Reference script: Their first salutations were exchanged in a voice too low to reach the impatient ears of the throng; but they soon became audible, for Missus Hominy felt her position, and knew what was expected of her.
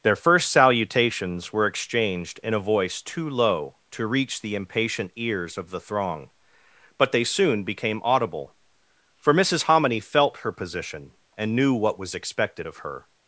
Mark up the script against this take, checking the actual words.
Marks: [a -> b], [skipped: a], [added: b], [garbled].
Their first salutations were exchanged in a voice too low to reach the impatient ears of the throng; but they soon became audible, for Missus Hominy felt her position, and knew what was expected of her.